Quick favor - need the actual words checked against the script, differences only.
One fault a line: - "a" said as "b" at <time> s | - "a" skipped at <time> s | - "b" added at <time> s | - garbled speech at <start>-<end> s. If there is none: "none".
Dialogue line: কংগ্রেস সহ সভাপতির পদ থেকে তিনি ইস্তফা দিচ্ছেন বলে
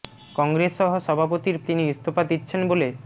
- "পদ থেকে" skipped at 1.6 s